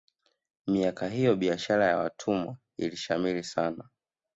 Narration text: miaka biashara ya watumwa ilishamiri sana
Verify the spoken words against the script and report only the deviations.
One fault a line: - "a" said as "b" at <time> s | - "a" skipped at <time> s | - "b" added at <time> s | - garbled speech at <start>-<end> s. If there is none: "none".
- "hiyo" added at 1.1 s